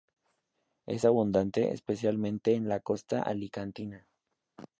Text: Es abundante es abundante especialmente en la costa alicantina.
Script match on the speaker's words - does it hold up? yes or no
no